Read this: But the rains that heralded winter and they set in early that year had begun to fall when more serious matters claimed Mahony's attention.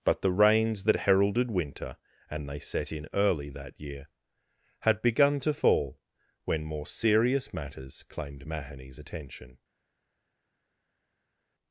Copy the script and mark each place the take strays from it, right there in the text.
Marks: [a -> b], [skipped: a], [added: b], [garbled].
But the rains that heralded winter and they set in early that year had begun to fall when more serious matters claimed Mahony's attention.